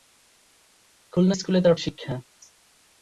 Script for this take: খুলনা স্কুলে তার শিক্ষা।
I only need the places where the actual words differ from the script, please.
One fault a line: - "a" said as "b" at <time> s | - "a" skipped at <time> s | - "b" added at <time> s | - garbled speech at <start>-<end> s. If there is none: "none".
none